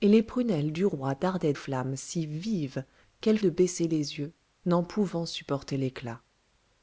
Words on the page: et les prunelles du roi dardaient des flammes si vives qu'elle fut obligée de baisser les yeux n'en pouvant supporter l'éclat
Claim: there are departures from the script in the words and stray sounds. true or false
true